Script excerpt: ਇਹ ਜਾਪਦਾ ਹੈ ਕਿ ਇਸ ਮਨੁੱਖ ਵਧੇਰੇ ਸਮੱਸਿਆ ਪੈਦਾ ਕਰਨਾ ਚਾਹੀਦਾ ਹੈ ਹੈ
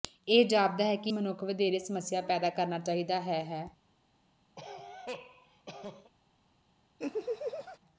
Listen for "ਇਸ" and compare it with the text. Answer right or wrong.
wrong